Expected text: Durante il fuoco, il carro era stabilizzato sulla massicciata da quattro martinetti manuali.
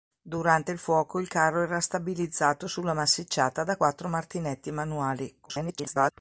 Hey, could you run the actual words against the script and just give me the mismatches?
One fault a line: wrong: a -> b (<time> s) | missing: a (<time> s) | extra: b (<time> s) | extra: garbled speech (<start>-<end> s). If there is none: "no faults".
extra: garbled speech (5.4-6.1 s)